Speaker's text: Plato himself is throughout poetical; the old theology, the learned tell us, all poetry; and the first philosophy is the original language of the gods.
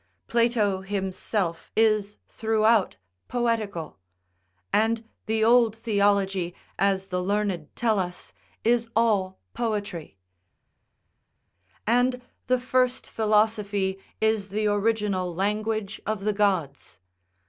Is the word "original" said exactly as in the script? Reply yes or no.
yes